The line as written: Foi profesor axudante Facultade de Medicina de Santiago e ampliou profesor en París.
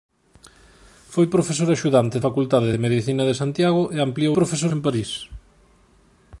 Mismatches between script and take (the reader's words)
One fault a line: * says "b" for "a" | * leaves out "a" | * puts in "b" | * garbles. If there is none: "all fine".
all fine